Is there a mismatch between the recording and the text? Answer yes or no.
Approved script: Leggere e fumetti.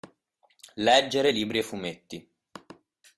yes